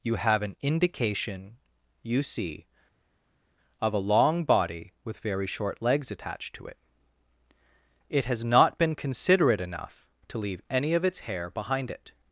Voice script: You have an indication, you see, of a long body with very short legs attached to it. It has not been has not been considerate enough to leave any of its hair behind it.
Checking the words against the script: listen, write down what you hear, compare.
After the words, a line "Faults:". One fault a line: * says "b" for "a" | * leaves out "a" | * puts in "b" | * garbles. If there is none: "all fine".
You have an indication, you see, of a long body with very short legs attached to it. It has not been considerate enough to leave any of its hair behind it.
Faults:
* leaves out "has not been"